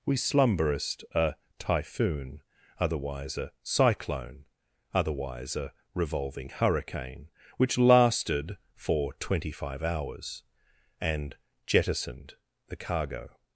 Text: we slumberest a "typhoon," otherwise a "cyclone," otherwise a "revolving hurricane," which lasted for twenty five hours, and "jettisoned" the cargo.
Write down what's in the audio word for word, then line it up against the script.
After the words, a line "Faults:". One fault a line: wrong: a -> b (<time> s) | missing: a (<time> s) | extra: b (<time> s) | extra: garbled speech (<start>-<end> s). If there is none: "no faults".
we slumberest a "typhoon," otherwise a "cyclone," otherwise a "revolving hurricane," which lasted for twenty five hours, and "jettisoned" the cargo.
Faults:
no faults